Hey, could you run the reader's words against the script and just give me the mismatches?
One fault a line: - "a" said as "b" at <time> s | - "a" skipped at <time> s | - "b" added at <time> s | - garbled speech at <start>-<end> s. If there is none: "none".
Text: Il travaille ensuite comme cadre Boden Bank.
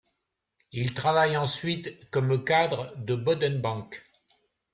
- "de" added at 3.0 s